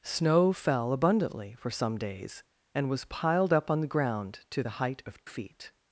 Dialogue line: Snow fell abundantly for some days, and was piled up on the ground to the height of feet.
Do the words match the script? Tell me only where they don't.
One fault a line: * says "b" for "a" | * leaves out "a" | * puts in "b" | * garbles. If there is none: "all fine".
all fine